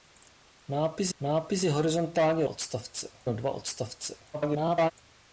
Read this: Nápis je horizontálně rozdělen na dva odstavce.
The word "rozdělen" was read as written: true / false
false